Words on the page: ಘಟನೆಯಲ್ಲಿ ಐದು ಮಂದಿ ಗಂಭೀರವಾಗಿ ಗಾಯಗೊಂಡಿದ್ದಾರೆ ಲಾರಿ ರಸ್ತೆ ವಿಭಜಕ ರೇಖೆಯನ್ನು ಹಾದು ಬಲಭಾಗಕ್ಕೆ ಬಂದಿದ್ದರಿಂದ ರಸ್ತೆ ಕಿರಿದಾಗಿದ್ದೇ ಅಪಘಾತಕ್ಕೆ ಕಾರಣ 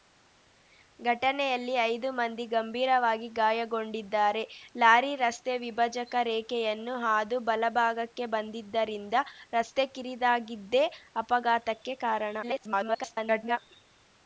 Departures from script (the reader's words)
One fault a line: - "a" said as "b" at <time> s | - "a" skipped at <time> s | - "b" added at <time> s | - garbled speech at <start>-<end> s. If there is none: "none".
- garbled speech at 12.4-13.6 s